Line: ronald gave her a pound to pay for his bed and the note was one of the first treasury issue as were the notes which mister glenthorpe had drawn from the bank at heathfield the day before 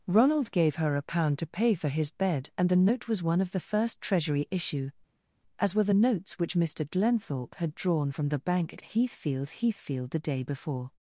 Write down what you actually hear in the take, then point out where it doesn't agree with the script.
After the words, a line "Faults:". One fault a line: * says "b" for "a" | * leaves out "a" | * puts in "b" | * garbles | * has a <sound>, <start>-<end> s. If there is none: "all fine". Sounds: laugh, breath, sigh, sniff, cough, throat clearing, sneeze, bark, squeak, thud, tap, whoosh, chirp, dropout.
ronald gave her a pound to pay for his bed and the note was one of the first treasury issue as were the notes which mister glenthorpe had drawn from the bank at heathfield heathfield the day before
Faults:
* puts in "heathfield"